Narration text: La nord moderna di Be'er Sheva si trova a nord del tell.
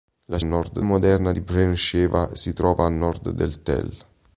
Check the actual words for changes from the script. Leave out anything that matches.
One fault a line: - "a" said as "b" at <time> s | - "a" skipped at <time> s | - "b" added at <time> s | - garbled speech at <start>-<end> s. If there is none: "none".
none